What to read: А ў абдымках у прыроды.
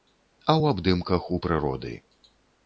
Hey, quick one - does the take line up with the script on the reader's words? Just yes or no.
yes